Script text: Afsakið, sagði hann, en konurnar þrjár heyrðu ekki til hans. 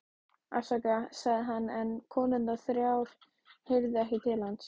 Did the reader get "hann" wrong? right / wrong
right